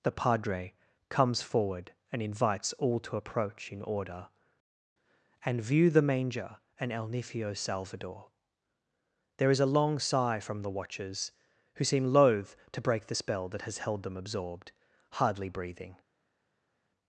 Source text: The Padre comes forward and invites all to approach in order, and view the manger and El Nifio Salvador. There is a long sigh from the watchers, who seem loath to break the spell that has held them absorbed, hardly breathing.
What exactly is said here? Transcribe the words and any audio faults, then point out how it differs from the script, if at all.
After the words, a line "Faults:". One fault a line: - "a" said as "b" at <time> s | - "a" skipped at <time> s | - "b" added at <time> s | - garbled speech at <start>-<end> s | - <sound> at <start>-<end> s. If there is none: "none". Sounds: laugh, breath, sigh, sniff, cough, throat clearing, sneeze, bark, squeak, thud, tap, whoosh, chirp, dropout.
The Padre comes forward and invites all to approach in order, and view the manger and El Nifio Salvador. There is a long sigh from the watchers, who seem loath to break the spell that has held them absorbed, hardly breathing.
Faults:
none